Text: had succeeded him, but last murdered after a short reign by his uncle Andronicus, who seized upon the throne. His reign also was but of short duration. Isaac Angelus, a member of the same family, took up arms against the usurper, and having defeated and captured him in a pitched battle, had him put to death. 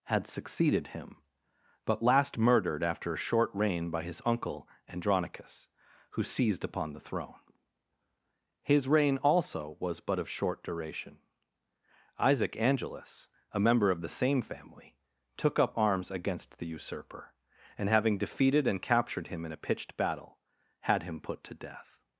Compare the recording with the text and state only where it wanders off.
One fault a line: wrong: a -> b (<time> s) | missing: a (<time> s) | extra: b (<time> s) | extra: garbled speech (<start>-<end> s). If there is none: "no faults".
no faults